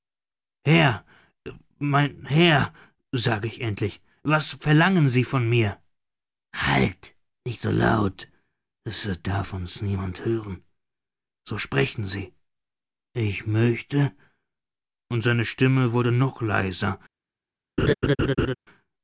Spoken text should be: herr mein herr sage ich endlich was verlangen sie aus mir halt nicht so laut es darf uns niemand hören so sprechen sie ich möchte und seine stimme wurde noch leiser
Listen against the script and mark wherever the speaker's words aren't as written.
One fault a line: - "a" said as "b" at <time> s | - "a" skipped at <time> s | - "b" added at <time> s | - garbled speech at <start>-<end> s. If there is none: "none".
- "aus" said as "von" at 5.2 s